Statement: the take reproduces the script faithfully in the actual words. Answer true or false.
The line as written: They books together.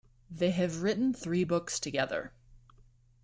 false